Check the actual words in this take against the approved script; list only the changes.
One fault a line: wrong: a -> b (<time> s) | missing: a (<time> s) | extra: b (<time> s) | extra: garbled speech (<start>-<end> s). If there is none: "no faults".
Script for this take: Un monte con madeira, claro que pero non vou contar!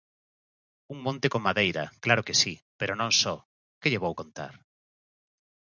extra: si (2.4 s)
extra: só que lle (3.2 s)